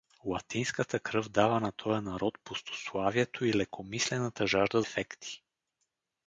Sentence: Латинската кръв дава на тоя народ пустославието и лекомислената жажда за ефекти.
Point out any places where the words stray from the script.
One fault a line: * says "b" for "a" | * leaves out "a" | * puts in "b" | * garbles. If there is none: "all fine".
* leaves out "за"